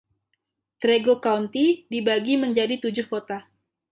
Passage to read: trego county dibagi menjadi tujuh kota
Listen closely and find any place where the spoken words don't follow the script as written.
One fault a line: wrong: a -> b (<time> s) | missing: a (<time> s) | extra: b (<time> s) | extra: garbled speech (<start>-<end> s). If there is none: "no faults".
no faults